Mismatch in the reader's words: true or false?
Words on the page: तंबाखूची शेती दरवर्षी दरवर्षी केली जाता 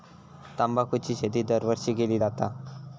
true